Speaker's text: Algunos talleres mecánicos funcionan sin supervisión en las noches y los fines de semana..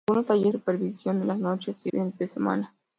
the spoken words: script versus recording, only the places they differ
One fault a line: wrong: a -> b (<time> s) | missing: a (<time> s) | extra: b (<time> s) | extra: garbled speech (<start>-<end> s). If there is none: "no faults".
missing: mecánicos funcionan sin (0.5 s)
missing: los (1.9 s)